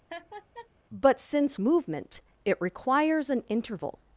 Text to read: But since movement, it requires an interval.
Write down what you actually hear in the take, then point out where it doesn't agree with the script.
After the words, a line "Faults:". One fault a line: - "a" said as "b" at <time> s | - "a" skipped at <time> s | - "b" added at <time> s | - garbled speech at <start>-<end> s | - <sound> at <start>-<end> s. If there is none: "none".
But since movement, it requires an interval.
Faults:
- laugh at 0.1-0.7 s